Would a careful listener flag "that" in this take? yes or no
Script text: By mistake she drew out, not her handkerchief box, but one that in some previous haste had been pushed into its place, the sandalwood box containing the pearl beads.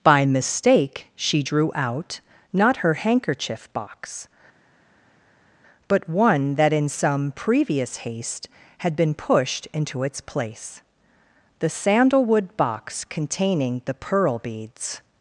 no